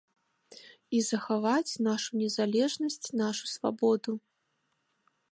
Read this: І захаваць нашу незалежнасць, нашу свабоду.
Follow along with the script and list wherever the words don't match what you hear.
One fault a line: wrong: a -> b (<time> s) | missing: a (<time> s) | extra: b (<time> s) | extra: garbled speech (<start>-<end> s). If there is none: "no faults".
no faults